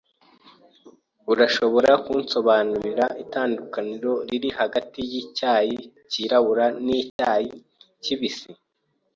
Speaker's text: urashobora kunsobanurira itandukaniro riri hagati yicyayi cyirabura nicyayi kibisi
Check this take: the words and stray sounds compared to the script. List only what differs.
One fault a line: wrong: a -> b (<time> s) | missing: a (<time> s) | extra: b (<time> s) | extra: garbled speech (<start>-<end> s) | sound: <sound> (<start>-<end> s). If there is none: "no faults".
sound: dropout (7.1-7.2 s)